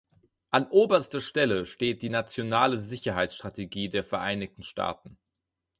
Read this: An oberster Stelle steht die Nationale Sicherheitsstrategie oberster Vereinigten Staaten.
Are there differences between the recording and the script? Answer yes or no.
yes